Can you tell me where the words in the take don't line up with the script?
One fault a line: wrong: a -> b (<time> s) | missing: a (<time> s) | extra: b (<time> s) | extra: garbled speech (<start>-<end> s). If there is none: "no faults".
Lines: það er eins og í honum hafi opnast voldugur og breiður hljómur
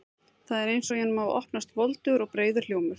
no faults